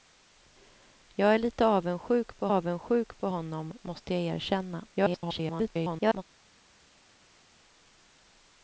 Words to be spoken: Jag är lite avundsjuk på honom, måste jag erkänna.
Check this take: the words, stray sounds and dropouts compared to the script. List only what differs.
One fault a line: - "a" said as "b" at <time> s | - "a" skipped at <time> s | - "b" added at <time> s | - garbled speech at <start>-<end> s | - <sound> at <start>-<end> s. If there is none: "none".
- "avundsjuk på" added at 2.5 s
- garbled speech at 4.9-6.2 s